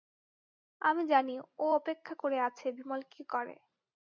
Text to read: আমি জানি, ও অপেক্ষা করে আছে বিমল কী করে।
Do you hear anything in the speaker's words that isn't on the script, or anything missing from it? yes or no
no